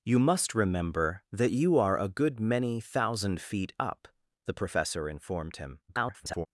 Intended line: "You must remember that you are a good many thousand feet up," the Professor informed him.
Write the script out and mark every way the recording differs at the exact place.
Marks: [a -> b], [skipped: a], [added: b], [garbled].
"You must remember that you are a good many thousand feet up," the Professor informed him. [garbled]